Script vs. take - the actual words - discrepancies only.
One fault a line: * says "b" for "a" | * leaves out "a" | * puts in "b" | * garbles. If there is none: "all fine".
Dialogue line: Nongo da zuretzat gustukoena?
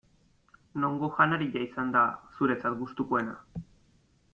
* puts in "janaria izan"